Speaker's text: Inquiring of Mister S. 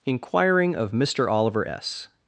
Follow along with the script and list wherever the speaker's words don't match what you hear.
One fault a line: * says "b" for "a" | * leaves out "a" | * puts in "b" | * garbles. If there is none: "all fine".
* puts in "Oliver"